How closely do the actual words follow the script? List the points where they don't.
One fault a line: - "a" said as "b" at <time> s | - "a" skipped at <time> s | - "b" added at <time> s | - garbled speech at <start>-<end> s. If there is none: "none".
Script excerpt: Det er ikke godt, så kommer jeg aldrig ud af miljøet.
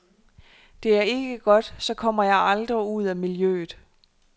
none